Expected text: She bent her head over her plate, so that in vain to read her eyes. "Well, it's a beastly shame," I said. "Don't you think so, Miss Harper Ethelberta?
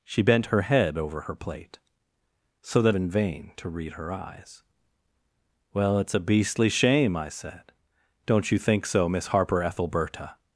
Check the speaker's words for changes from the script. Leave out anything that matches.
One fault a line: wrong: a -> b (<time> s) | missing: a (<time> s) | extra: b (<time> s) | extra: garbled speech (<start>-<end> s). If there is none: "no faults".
no faults